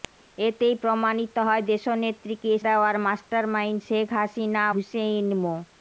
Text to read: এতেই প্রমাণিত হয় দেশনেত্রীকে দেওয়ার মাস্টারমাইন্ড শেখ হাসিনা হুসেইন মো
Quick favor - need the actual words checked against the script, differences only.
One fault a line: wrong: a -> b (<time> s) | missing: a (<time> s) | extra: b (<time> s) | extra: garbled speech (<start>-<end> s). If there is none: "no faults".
no faults